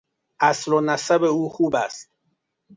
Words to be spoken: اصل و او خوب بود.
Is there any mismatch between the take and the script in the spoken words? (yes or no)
yes